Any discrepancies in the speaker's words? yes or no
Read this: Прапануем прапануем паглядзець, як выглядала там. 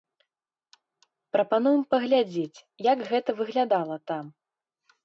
yes